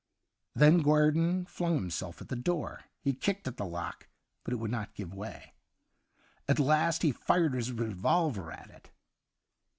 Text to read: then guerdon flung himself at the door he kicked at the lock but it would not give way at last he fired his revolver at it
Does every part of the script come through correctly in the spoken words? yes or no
yes